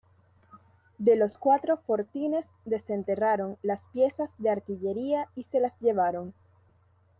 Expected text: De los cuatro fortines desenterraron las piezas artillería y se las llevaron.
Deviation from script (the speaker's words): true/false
true